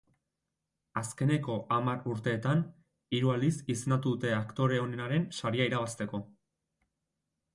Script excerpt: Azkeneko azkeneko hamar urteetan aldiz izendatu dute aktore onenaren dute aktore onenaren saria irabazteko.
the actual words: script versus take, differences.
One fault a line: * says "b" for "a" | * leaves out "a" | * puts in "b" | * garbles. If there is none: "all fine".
* leaves out "azkeneko"
* puts in "hiru"
* leaves out "dute aktore onenaren"